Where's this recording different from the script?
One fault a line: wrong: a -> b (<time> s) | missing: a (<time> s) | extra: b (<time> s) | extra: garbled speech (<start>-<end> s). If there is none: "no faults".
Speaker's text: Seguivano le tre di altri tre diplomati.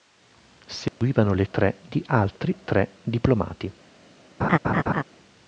no faults